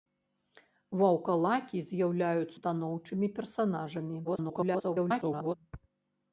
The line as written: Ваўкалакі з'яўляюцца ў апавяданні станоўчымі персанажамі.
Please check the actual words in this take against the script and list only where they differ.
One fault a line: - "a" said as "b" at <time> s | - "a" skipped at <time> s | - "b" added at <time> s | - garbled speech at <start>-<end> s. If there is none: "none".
- "ў апавяданні" skipped at 2.5 s
- garbled speech at 4.2-5.5 s